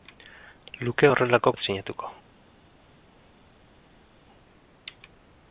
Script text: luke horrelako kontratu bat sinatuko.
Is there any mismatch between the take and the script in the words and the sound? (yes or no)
yes